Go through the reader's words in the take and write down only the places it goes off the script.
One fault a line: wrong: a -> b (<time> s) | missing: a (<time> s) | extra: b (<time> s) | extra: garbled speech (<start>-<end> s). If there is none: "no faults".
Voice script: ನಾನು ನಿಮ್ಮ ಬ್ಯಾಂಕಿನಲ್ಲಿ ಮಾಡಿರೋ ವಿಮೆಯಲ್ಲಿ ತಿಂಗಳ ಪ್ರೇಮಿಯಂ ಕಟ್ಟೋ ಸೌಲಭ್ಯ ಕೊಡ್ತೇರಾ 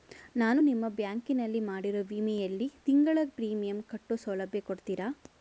no faults